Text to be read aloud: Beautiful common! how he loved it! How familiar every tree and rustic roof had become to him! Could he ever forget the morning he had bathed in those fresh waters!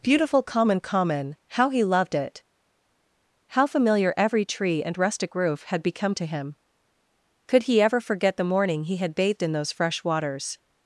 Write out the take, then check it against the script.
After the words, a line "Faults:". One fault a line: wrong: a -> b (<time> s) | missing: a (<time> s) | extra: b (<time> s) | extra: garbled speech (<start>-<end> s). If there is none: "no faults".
Beautiful common common! how he loved it! How familiar every tree and rustic roof had become to him! Could he ever forget the morning he had bathed in those fresh waters!
Faults:
extra: common (0.8 s)